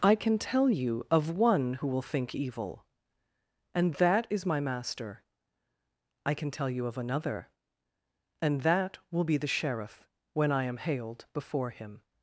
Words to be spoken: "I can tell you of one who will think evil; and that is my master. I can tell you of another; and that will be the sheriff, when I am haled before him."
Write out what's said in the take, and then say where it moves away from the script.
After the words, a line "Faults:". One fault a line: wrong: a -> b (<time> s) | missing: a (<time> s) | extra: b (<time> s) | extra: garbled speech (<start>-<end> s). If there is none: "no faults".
"I can tell you of one who will think evil; and that is my master. I can tell you of another; and that will be the sheriff, when I am haled before him."
Faults:
no faults